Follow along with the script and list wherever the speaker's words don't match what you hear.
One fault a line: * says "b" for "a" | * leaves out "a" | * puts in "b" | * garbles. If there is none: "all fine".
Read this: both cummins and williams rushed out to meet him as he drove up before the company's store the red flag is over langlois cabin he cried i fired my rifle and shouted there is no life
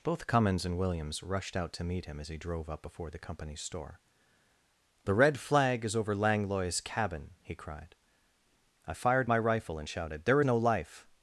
* leaves out "is"